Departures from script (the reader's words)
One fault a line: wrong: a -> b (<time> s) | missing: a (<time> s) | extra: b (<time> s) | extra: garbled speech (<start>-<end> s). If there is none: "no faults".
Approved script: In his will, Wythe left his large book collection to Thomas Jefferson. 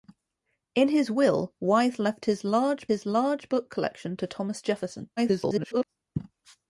extra: his large (2.9 s)
extra: garbled speech (5.2-5.8 s)